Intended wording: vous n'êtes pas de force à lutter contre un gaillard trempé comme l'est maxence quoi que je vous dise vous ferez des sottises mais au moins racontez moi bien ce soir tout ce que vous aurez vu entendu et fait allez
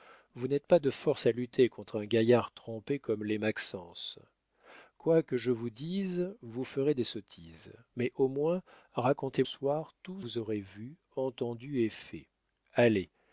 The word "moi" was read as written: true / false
false